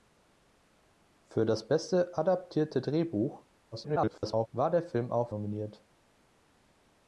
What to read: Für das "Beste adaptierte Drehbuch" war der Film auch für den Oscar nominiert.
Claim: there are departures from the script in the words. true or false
true